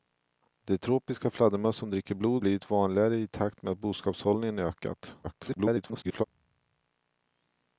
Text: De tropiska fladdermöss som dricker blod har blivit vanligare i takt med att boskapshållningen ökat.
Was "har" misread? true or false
true